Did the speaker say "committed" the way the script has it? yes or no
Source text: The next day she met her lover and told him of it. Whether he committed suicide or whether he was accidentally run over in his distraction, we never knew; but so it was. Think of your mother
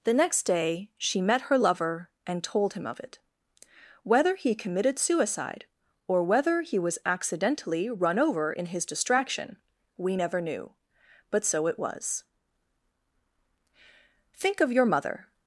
yes